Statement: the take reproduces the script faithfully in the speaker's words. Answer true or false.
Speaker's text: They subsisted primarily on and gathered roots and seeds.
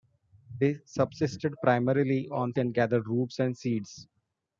true